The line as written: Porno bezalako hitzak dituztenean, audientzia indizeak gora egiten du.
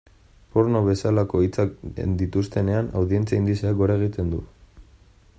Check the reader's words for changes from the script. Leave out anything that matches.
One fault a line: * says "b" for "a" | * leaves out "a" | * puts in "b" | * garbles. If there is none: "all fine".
all fine